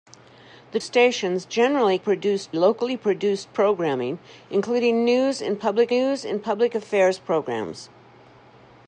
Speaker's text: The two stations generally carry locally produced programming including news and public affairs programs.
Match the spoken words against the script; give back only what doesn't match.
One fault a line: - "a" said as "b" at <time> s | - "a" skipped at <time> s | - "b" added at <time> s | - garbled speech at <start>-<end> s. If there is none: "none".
- "two" skipped at 0.8 s
- "carry" said as "produced" at 2.0 s
- "news and public" added at 5.9 s